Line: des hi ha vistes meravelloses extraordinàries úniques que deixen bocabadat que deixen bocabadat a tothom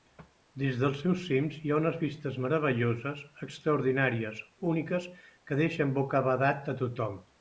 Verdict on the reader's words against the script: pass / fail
fail